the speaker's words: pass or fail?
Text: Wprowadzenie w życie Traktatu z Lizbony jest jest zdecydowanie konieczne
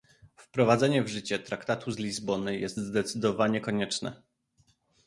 fail